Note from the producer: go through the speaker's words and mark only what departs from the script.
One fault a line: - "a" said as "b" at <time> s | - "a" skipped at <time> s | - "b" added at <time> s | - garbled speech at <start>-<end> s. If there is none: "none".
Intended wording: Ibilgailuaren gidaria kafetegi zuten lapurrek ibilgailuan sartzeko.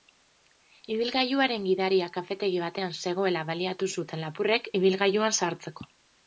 - "batean zegoela baliatu" added at 2.6 s